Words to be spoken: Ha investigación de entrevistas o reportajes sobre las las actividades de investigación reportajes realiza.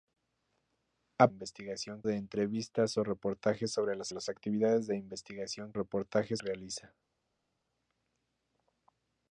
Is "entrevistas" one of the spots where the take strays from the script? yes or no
no